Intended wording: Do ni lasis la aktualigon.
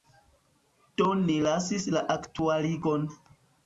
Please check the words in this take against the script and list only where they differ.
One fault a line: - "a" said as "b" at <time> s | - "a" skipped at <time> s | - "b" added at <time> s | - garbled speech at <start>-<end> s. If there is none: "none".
none